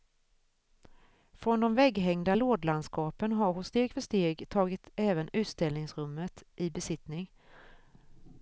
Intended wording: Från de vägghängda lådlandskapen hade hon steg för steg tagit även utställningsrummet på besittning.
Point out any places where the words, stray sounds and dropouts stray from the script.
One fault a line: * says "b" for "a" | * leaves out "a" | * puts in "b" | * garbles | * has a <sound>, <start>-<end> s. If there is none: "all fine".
* says "har" for "hade"
* says "i" for "på"